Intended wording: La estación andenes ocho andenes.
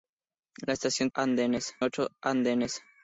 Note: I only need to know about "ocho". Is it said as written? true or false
true